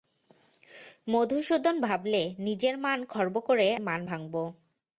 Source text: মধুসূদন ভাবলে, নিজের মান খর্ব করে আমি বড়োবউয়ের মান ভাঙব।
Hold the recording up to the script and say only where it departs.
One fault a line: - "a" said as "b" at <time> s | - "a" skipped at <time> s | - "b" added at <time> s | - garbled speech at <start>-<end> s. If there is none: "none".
- "আমি বড়োবউয়ের" skipped at 3.7 s